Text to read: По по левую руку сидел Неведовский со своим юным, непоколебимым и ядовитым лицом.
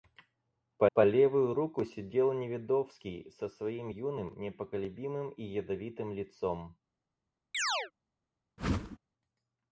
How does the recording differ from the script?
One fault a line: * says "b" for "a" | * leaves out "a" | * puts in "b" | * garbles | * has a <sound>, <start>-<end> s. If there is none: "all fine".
* has a chirp, 7.5-7.9 s
* has a whoosh, 8.6-9.0 s